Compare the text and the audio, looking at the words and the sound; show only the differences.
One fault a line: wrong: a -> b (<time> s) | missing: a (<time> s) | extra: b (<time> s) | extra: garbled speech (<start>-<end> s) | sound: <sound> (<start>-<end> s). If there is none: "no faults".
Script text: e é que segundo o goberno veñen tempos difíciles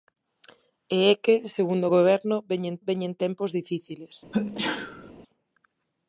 extra: veñen (2.9 s)
sound: sneeze (4.3-5.1 s)